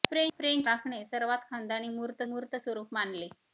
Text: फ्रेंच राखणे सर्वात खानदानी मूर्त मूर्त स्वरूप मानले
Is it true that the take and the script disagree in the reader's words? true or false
false